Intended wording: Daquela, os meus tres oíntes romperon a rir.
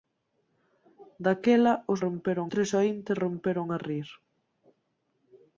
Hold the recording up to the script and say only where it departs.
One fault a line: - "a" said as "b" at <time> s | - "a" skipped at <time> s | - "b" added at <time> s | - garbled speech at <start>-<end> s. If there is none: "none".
- "meus" said as "romperon" at 2.0 s